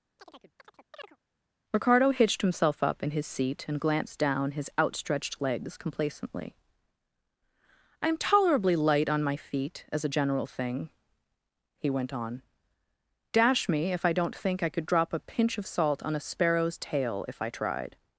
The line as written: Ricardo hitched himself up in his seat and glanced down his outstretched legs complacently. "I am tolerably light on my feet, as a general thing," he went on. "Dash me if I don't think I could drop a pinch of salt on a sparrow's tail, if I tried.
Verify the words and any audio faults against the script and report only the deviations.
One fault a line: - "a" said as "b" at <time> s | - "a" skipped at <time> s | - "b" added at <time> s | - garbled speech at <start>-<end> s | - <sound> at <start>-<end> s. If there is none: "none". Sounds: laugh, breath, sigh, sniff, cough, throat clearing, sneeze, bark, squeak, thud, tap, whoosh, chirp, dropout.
- chirp at 0.2-1.2 s